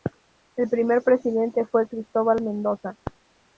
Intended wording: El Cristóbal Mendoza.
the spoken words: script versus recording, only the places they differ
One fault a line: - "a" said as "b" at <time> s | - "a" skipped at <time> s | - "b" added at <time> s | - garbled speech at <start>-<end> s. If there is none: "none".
- "primer presidente fue" added at 0.7 s